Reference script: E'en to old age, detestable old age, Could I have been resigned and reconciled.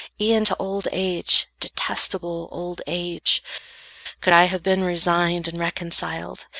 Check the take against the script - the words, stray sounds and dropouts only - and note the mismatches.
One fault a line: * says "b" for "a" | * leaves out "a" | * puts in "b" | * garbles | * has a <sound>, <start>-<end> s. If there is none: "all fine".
all fine